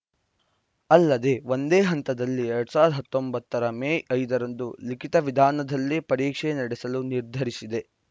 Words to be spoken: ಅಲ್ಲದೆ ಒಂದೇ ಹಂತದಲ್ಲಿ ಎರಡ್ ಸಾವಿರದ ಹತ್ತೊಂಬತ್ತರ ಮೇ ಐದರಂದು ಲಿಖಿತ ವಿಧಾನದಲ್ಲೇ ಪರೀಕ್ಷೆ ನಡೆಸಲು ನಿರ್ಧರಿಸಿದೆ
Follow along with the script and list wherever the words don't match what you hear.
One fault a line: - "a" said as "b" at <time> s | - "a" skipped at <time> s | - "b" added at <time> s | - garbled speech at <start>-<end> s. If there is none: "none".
none